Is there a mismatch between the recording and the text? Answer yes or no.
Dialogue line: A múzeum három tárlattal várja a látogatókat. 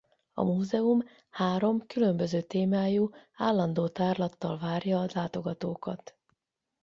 yes